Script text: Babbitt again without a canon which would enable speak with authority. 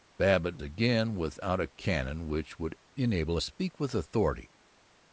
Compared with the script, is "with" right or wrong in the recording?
right